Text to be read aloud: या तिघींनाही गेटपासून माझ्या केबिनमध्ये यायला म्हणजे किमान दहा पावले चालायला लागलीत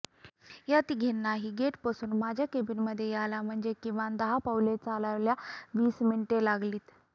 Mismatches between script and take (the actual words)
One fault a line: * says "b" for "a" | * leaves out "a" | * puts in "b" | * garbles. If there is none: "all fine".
* puts in "वीस मिनिटे"